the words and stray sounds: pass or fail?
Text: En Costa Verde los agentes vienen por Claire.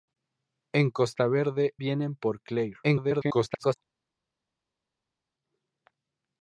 fail